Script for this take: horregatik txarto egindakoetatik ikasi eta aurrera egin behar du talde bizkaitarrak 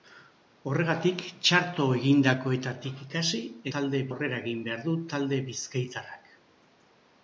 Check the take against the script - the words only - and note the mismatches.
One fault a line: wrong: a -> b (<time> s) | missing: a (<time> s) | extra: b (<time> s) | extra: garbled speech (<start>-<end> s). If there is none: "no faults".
wrong: eta -> talde (3.8 s)